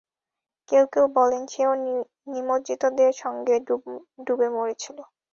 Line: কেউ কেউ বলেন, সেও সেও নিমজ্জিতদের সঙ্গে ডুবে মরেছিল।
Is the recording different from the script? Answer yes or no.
yes